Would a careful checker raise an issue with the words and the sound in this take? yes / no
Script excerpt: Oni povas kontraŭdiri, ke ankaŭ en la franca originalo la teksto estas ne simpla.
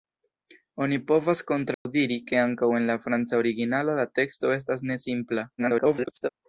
yes